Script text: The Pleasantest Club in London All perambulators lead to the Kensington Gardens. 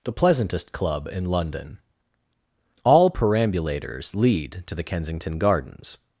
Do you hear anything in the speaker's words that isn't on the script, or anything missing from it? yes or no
no